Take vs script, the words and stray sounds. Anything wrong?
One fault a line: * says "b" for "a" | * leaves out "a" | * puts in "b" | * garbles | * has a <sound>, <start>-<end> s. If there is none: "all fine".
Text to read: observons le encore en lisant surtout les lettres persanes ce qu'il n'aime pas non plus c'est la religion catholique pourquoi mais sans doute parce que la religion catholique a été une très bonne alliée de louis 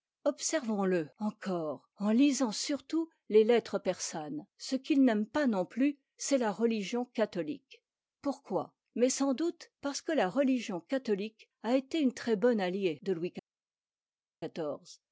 all fine